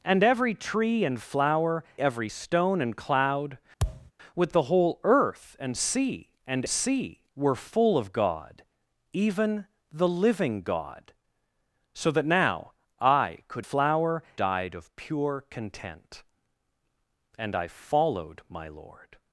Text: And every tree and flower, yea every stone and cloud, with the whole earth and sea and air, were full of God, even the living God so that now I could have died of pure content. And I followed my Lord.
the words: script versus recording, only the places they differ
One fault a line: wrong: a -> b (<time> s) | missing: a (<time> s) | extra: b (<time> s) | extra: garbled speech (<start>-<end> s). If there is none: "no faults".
missing: yea (1.8 s)
wrong: air -> sea (6.7 s)
wrong: have -> flower (13.6 s)